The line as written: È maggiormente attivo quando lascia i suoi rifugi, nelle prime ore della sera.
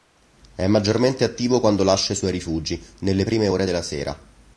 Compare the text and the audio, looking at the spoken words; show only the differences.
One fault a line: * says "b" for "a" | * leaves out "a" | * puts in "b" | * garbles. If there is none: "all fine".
all fine